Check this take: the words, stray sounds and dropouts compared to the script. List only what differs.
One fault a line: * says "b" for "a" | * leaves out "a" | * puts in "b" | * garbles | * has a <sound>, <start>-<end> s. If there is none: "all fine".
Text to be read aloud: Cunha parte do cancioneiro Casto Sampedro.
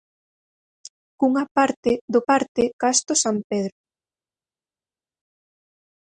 * says "parte" for "cancioneiro"